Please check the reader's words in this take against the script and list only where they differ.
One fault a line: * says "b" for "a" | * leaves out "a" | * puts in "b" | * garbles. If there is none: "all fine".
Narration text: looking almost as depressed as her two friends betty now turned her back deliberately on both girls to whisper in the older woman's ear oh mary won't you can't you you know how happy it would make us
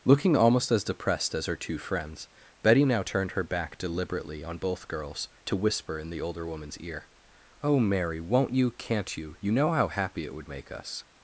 all fine